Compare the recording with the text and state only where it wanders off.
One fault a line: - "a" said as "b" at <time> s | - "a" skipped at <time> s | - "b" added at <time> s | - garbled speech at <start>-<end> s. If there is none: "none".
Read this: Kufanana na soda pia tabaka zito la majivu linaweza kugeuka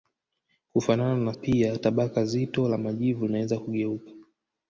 - "soda" skipped at 1.3 s